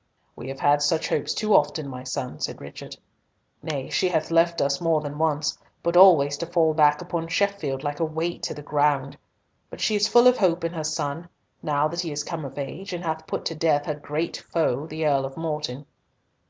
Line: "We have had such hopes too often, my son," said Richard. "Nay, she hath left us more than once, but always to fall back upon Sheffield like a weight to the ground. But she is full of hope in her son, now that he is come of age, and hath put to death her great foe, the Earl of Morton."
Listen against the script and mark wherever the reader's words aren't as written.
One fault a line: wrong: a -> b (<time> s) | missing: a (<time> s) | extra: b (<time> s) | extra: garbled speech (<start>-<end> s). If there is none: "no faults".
no faults